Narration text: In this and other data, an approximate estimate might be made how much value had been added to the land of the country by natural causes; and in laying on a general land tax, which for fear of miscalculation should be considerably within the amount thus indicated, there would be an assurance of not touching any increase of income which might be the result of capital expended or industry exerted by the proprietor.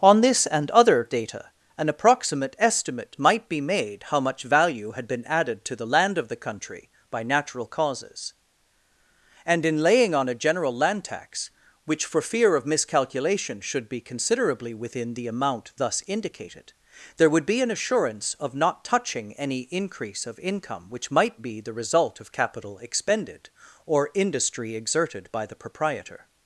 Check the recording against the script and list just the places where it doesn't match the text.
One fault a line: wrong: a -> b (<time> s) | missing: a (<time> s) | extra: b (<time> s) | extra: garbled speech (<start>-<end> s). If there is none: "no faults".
wrong: In -> On (0.0 s)